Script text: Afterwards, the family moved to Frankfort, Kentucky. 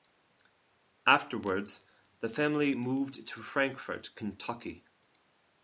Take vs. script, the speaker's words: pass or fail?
pass